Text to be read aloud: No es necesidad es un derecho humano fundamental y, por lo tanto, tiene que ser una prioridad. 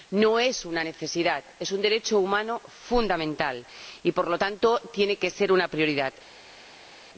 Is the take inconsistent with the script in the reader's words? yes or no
yes